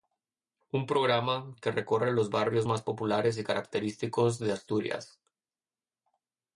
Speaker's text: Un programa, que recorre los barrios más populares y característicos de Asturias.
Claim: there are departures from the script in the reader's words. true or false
false